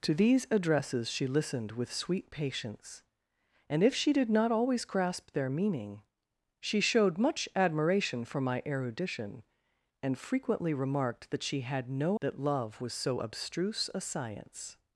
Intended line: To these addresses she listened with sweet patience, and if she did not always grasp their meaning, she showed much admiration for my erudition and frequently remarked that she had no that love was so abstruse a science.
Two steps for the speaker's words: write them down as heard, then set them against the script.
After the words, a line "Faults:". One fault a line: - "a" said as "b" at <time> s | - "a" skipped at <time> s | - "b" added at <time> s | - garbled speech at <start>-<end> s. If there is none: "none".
To these addresses she listened with sweet patience, and if she did not always grasp their meaning, she showed much admiration for my erudition and frequently remarked that she had no that love was so abstruse a science.
Faults:
none